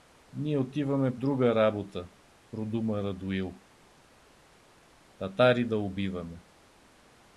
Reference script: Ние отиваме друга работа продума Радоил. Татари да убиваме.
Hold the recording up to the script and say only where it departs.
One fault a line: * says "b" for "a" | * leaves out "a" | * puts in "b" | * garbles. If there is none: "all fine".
all fine